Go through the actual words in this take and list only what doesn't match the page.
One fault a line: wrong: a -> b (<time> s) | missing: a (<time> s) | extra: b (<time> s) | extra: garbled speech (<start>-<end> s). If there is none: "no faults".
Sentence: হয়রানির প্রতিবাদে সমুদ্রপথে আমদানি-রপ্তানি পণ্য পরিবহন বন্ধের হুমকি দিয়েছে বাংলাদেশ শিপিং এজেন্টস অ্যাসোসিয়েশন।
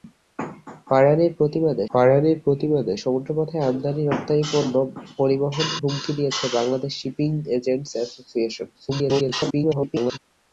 extra: হয়রানির প্রতিবাদে (1.9 s)
missing: বন্ধের (5.6 s)
extra: garbled speech (8.7-10.2 s)